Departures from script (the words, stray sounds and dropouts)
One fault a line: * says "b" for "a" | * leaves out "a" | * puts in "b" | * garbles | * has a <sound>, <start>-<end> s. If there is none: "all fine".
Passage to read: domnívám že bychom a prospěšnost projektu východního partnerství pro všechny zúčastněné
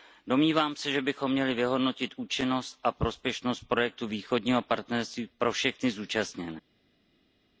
* puts in "se"
* puts in "měli vyhodnotit účinnost"